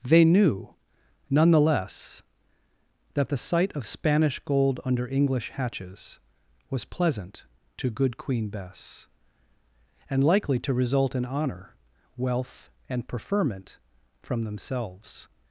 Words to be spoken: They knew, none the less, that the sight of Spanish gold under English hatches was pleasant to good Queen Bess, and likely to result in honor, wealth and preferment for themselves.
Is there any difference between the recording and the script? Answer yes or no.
yes